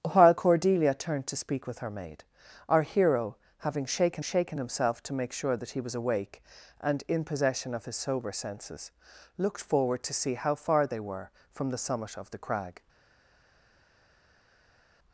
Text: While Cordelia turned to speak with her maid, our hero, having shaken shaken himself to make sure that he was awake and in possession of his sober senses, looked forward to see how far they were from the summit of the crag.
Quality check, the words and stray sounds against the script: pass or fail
pass